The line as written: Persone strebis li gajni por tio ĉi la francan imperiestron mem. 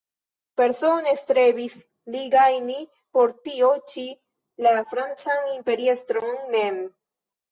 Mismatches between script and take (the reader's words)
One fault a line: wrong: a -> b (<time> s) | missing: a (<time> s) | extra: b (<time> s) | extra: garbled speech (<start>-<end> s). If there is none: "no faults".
no faults